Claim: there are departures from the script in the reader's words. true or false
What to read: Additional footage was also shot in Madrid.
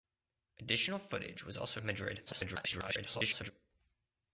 true